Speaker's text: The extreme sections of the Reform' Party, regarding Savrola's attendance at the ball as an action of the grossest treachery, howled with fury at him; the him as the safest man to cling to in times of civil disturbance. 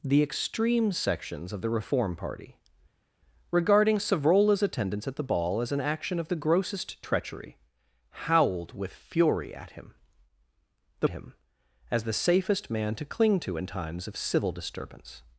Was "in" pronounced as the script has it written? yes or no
yes